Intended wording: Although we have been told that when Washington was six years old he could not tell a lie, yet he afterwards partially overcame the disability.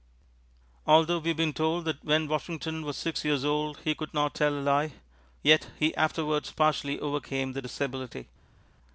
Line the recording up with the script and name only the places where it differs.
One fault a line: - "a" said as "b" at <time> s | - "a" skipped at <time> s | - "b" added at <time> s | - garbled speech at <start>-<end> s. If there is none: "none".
none